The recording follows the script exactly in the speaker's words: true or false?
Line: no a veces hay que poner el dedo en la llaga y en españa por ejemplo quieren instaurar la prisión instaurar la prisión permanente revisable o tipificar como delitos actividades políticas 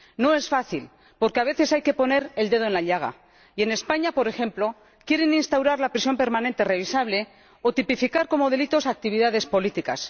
false